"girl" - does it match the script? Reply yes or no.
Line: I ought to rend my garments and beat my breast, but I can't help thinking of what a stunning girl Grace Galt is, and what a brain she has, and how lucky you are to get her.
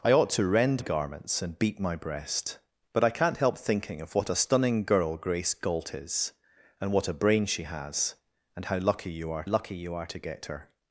yes